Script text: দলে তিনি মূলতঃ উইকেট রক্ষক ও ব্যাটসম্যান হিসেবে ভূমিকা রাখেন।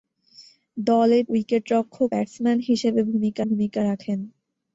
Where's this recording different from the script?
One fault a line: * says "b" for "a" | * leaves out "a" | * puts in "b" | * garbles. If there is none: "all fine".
* leaves out "তিনি মূলতঃ"
* leaves out "ও"
* puts in "ভূমিকা"